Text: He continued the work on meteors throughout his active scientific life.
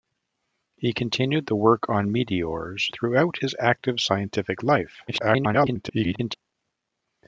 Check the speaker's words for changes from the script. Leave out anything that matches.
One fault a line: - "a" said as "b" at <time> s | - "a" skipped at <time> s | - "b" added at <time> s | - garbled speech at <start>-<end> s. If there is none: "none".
- garbled speech at 5.1-6.3 s